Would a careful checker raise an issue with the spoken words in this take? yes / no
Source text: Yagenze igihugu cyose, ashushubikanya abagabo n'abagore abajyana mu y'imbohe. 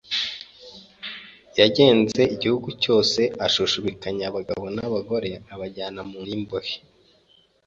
no